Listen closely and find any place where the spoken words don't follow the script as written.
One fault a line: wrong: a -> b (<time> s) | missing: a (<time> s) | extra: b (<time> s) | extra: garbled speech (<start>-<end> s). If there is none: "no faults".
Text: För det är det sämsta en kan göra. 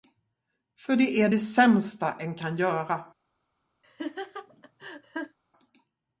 no faults